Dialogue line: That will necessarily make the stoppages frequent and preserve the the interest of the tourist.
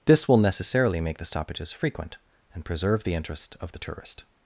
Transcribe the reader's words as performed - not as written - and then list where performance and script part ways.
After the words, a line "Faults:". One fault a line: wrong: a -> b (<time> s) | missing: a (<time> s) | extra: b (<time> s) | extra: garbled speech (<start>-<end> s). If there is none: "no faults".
This will necessarily make the stoppages frequent and preserve the interest of the tourist.
Faults:
wrong: That -> This (0.1 s)
missing: the (3.1 s)